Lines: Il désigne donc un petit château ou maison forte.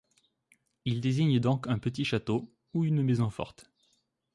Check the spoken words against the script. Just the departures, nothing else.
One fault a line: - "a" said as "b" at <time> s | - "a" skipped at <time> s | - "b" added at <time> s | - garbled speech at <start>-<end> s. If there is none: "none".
- "une" added at 2.8 s